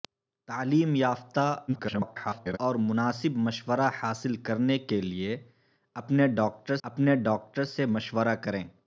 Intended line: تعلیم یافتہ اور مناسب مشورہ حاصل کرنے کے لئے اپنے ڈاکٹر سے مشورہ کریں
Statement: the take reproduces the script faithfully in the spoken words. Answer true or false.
false